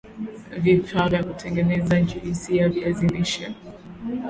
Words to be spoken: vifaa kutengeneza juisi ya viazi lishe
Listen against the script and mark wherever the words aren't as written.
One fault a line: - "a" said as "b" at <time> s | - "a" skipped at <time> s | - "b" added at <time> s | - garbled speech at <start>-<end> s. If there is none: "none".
- "vya" added at 1.1 s